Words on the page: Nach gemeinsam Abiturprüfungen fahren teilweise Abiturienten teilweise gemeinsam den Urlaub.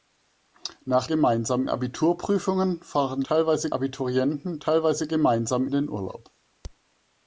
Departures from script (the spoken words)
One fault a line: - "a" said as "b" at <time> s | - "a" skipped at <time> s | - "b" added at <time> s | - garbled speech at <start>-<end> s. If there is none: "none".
none